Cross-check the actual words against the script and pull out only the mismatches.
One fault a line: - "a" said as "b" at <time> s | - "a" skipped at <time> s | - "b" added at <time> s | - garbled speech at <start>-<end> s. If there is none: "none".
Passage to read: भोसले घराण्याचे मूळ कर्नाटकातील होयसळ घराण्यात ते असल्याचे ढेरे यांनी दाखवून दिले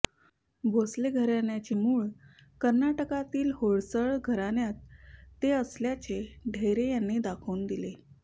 none